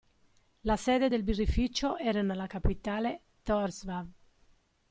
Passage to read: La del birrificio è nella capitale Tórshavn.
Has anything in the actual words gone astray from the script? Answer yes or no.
yes